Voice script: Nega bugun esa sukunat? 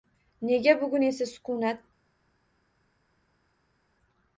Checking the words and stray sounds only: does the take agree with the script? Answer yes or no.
yes